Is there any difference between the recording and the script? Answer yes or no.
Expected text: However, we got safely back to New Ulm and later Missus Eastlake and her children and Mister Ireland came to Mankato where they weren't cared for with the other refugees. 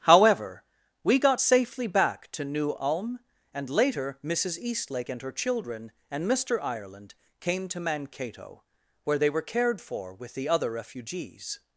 yes